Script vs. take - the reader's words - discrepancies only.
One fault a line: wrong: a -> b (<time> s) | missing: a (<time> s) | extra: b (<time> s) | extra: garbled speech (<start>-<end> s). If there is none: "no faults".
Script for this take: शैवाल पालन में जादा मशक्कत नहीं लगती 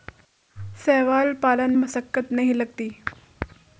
missing: में जादा (1.7 s)